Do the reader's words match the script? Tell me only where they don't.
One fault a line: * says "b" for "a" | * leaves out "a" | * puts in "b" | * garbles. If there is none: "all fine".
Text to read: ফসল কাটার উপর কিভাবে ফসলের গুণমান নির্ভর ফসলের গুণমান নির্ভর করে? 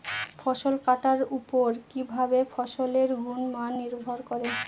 * leaves out "ফসলের গুণমান নির্ভর"